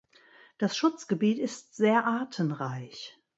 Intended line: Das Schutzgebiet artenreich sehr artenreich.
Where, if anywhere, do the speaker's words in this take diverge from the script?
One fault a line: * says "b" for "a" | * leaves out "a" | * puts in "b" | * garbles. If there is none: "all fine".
* says "ist" for "artenreich"